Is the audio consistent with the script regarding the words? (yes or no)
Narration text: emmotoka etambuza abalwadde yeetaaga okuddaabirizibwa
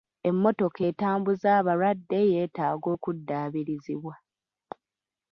yes